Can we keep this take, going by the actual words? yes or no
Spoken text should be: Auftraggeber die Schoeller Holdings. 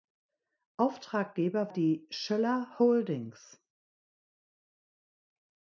yes